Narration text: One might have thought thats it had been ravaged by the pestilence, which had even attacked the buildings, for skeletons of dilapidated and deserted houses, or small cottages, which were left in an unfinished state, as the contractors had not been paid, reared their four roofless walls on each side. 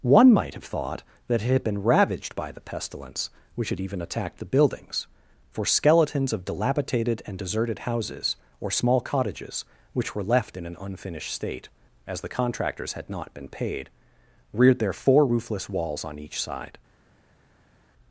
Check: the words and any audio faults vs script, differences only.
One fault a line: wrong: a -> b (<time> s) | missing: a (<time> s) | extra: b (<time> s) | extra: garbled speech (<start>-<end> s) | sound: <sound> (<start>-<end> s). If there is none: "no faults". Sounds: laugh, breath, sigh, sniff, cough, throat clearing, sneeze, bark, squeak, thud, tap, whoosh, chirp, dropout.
wrong: thats -> that (1.3 s)